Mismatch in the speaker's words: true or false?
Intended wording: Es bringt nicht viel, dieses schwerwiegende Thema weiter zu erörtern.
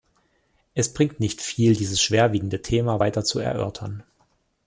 false